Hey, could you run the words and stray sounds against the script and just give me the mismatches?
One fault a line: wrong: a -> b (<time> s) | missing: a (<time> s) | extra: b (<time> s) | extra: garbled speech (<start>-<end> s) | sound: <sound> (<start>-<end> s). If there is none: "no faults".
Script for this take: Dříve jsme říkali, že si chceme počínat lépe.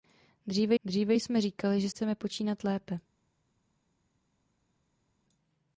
extra: dříve (0.8 s)
missing: si (1.9 s)